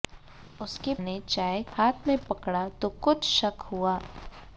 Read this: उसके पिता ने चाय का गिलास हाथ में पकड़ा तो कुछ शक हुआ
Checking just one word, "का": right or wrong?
wrong